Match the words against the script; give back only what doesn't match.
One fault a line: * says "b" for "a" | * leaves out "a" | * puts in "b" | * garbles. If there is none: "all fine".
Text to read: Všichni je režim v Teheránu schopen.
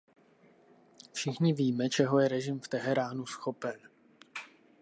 * puts in "víme čeho"